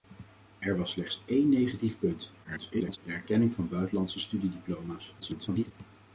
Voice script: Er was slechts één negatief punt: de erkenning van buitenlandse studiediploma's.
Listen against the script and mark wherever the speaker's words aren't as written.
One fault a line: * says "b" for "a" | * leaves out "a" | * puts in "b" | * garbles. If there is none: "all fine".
* garbles
* garbles